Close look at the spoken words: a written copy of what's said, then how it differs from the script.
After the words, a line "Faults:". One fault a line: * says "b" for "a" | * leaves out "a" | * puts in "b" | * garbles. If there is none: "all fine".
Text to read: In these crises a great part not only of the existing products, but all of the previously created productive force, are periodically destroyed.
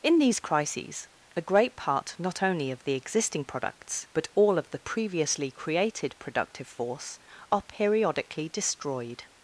In these crises a great part not only of the existing products, but all of the previously created productive force, are periodically destroyed.
Faults:
all fine